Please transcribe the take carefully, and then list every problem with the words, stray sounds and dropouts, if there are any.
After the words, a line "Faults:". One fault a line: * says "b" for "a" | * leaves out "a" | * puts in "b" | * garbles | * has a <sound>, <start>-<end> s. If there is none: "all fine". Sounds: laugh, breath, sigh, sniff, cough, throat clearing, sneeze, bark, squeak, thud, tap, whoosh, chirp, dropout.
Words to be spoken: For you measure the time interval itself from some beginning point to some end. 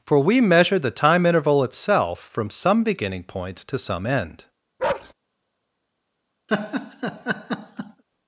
For we measure the time interval itself from some beginning point to some end.
Faults:
* says "we" for "you"
* has a bark, 4.8-5.1 s
* has a laugh, 6.5-8.0 s